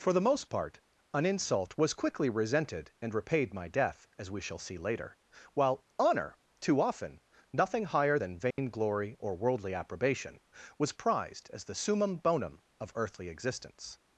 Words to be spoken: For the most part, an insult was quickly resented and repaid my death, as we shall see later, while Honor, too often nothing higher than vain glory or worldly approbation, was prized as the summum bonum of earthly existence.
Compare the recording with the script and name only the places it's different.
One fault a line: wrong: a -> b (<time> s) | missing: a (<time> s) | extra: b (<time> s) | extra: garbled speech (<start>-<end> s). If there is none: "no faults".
no faults